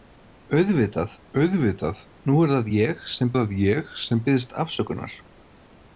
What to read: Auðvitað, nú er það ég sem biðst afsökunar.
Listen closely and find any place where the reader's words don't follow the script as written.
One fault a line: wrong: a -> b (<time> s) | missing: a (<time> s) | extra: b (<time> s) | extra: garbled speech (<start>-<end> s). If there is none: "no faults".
extra: auðvitað (1.4 s)
extra: það ég sem (3.4 s)